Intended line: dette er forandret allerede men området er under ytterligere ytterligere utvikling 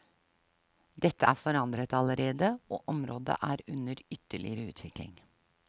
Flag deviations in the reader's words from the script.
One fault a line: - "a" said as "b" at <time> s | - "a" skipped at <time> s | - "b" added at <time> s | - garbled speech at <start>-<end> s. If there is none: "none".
- "men" said as "og" at 2.7 s
- "ytterligere" skipped at 4.7 s